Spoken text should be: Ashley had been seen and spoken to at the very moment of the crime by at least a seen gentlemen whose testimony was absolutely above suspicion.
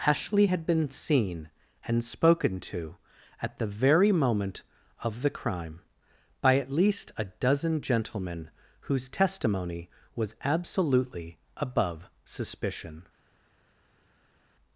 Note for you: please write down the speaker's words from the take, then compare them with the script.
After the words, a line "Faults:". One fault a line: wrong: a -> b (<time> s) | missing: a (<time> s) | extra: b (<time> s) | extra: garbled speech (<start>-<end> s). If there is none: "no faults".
Ashley had been seen and spoken to at the very moment of the crime by at least a dozen gentlemen whose testimony was absolutely above suspicion.
Faults:
wrong: seen -> dozen (7.2 s)